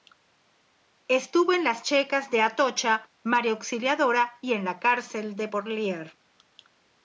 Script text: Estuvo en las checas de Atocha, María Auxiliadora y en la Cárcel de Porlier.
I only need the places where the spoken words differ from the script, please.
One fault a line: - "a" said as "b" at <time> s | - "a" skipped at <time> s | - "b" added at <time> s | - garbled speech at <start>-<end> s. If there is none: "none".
none